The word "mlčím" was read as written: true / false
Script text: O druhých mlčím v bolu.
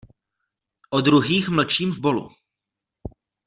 true